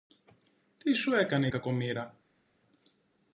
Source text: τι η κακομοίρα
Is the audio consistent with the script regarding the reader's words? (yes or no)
no